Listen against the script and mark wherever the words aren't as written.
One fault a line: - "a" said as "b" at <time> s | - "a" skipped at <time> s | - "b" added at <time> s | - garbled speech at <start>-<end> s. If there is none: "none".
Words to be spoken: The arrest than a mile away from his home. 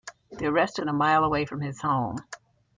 none